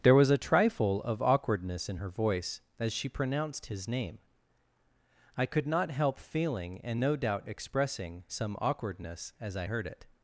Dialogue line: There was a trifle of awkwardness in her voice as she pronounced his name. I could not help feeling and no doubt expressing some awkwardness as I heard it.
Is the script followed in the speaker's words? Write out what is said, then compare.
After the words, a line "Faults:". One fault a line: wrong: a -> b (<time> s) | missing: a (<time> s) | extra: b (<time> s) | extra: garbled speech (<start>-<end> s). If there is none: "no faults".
There was a trifle of awkwardness in her voice as she pronounced his name. I could not help feeling and no doubt expressing some awkwardness as I heard it.
Faults:
no faults